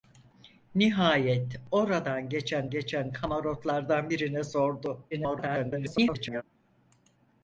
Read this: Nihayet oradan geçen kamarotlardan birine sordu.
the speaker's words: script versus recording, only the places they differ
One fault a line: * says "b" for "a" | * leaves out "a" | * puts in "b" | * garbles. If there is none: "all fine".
* puts in "geçen"
* garbles